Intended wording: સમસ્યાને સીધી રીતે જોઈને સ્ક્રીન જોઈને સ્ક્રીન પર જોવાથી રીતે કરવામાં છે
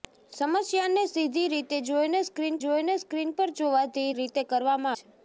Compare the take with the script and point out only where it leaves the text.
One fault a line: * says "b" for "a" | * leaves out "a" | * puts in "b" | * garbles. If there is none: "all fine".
all fine